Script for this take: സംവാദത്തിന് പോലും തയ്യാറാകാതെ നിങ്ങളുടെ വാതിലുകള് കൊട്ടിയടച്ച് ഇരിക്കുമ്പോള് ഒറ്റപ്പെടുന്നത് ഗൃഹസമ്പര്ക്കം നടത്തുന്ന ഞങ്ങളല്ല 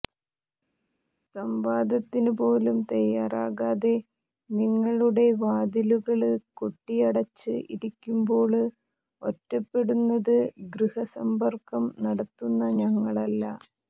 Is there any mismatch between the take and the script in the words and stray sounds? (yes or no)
no